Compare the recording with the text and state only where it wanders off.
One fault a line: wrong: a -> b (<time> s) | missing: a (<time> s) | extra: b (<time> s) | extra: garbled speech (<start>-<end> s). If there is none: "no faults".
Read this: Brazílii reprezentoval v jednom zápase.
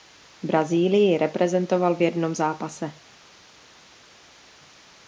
no faults